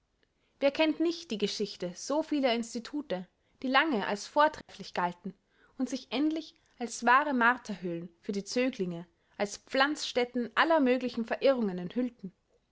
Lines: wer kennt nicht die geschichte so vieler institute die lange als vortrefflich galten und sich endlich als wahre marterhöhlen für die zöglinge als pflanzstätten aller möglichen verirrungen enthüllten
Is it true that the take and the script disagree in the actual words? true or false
false